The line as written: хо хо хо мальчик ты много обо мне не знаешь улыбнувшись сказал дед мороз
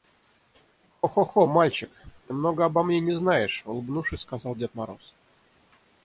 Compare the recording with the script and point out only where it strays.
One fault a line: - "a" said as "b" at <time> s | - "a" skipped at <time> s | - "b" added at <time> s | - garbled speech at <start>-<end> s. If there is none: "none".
none